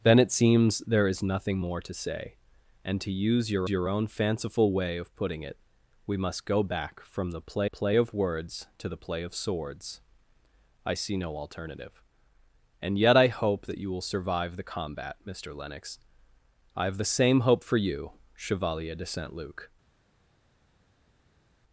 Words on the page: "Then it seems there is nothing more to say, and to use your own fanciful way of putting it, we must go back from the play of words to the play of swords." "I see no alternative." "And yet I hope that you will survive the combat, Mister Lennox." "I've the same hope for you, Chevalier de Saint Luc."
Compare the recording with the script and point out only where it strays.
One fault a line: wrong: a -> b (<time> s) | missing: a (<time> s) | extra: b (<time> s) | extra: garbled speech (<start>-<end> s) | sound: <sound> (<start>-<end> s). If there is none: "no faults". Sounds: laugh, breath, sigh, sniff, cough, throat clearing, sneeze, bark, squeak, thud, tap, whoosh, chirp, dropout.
extra: your (3.7 s)
extra: play (7.7 s)